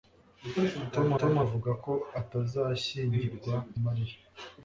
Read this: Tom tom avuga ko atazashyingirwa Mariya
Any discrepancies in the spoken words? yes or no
no